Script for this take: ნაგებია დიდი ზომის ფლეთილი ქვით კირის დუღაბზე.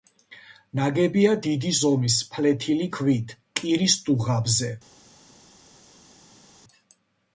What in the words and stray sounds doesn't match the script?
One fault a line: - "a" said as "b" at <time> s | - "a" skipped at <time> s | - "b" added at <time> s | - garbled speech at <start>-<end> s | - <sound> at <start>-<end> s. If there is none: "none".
none